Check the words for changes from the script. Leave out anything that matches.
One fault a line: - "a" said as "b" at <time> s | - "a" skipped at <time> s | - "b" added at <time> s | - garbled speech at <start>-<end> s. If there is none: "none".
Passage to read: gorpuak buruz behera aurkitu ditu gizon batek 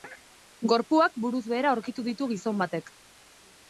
none